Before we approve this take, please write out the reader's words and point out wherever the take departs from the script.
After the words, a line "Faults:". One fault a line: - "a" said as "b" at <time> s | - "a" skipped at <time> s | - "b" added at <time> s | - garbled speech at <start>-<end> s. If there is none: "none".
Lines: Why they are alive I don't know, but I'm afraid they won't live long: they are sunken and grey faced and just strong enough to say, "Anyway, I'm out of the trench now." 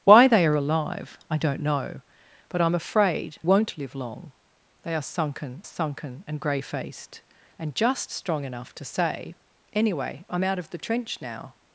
Why they are alive I don't know, but I'm afraid won't live long: they are sunken sunken and grey faced and just strong enough to say, "Anyway, I'm out of the trench now."
Faults:
- "they" skipped at 3.4 s
- "sunken" added at 5.6 s